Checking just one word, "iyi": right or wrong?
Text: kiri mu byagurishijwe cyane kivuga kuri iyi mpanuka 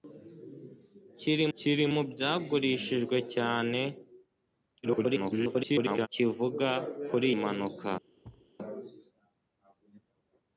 wrong